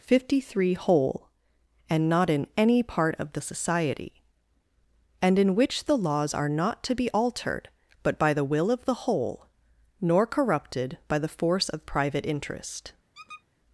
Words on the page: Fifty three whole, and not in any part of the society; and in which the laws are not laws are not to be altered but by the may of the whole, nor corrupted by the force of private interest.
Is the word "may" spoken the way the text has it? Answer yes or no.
no